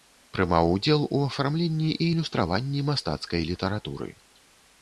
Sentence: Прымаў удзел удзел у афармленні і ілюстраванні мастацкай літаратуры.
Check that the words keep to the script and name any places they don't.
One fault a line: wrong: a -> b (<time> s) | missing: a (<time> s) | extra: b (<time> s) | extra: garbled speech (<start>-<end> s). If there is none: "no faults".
missing: удзел (1.0 s)